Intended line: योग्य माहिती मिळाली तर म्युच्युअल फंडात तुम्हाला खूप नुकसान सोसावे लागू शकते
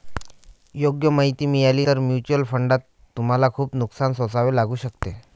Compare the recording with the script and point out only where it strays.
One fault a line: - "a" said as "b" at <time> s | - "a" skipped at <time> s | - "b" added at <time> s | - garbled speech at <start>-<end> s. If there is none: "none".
none